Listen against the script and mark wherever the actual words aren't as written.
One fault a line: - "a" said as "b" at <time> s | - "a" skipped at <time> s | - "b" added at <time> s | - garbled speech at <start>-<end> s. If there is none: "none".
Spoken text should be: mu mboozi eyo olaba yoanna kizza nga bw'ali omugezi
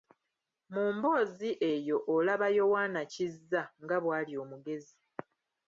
none